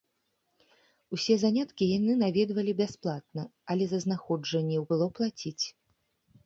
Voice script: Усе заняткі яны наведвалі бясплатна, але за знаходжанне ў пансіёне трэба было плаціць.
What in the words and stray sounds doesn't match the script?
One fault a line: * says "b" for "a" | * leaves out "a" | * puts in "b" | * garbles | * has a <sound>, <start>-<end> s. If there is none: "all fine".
* leaves out "пансіёне трэба"